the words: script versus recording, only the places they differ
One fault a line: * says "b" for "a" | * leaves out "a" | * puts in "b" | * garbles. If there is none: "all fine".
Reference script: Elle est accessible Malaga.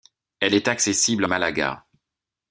all fine